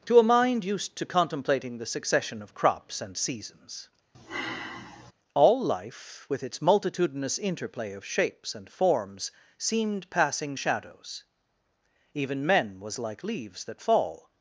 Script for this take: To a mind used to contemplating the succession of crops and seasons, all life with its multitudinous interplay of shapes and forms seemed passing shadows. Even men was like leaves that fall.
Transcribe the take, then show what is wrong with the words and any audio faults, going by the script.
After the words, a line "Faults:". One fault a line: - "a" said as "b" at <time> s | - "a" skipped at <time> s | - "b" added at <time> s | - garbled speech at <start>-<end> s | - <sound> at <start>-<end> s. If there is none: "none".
To a mind used to contemplating the succession of crops and seasons, all life with its multitudinous interplay of shapes and forms seemed passing shadows. Even men was like leaves that fall.
Faults:
- sigh at 4.1-5.1 s